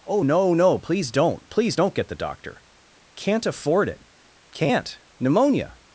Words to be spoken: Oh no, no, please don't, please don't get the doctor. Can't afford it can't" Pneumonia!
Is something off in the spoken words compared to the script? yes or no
no